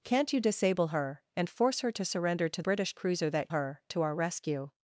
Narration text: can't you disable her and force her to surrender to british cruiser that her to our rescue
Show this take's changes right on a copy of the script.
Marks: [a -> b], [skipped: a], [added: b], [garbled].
can't you disable her and force her to surrender to british cruiser that her to our rescue